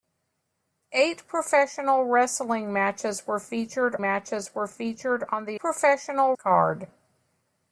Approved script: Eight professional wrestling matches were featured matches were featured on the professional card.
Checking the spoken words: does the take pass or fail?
pass